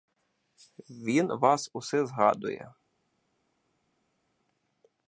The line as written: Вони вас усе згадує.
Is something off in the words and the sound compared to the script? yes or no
yes